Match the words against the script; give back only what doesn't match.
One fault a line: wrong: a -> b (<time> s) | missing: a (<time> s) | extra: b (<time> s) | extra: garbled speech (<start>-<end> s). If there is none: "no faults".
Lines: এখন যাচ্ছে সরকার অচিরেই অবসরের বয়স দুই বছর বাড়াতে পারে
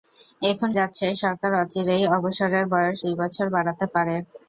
no faults